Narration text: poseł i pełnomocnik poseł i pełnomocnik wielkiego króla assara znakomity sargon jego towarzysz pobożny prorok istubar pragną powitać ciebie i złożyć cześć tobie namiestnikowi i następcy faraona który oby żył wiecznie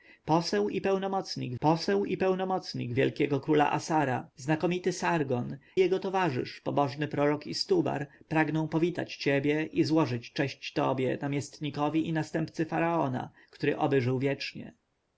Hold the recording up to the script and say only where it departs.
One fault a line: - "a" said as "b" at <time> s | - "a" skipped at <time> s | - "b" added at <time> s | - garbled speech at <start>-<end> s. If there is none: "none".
none